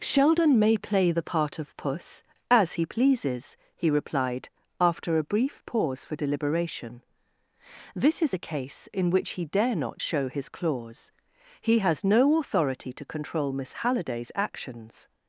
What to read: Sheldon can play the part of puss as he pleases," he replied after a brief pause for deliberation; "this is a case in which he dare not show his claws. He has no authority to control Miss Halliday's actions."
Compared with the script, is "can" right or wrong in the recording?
wrong